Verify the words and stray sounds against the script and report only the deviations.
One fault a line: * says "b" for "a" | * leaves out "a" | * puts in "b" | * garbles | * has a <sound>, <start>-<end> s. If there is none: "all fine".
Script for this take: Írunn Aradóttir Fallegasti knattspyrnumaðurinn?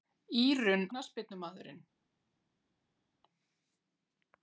* leaves out "Aradóttir Fallegasti"